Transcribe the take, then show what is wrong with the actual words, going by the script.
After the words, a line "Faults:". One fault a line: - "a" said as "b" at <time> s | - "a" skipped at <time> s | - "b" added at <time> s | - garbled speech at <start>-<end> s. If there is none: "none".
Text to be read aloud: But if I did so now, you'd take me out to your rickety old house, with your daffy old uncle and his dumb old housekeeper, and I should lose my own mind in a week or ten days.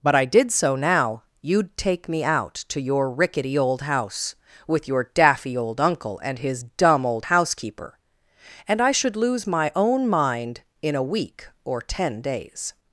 But I did so now, you'd take me out to your rickety old house, with your daffy old uncle and his dumb old housekeeper, and I should lose my own mind in a week or ten days.
Faults:
- "if" skipped at 0.1 s